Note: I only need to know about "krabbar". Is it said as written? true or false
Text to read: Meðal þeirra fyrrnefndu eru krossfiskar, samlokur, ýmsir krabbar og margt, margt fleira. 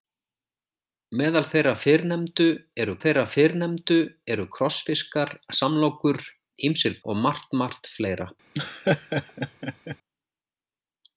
false